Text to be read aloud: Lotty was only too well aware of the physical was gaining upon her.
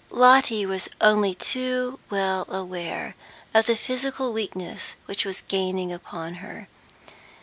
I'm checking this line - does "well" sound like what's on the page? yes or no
yes